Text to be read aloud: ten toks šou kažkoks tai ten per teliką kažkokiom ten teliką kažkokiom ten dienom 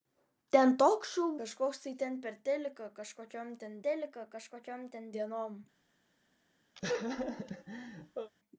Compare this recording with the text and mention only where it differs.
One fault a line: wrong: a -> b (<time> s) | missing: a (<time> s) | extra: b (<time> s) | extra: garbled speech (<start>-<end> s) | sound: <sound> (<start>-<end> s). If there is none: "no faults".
sound: laugh (6.8-8.3 s)